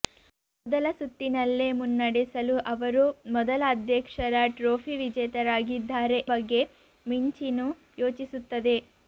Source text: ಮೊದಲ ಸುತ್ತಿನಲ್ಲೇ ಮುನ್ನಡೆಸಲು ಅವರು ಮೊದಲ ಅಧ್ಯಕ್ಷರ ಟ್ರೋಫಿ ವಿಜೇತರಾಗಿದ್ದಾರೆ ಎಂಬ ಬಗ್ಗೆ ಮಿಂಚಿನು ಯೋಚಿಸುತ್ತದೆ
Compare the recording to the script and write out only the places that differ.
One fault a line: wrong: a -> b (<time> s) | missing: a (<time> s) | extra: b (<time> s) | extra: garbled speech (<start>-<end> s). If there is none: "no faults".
missing: ಎಂಬ (6.2 s)